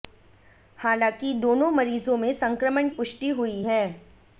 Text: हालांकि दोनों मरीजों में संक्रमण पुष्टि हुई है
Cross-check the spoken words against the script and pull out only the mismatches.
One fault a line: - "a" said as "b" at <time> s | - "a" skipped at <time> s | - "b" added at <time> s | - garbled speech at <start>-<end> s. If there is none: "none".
none